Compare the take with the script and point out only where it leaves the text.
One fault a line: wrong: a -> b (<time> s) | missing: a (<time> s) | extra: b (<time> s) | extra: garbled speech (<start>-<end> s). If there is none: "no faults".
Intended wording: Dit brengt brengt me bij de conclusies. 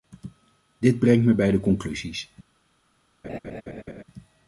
missing: brengt (1.2 s)